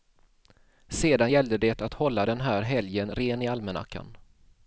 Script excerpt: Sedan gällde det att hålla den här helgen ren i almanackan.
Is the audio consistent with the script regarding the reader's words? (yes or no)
yes